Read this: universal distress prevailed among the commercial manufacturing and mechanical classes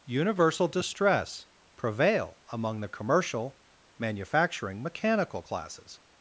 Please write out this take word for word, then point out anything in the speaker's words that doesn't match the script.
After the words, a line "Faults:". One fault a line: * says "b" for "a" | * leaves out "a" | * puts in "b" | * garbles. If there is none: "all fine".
universal distress prevail among the commercial manufacturing mechanical classes
Faults:
* says "prevail" for "prevailed"
* leaves out "and"